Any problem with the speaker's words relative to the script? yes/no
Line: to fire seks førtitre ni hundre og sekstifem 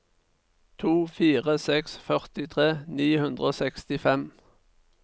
no